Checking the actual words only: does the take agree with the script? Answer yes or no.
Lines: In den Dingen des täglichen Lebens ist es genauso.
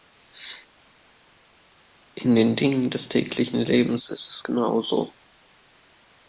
yes